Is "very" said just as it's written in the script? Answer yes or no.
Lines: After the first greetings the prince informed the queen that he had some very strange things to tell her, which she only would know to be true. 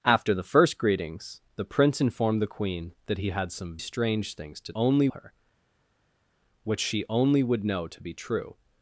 no